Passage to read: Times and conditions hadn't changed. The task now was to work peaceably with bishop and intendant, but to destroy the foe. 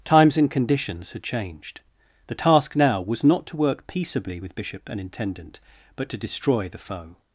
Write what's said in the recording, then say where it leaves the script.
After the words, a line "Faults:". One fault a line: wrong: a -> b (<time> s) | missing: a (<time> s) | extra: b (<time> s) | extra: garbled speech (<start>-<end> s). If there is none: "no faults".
Times and conditions had changed. The task now was not to work peaceably with bishop and intendant, but to destroy the foe.
Faults:
wrong: hadn't -> had (1.1 s)
extra: not (3.2 s)